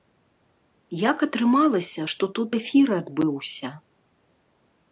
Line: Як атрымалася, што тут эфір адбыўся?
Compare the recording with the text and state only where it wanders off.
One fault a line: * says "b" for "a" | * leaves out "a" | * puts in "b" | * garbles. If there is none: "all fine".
all fine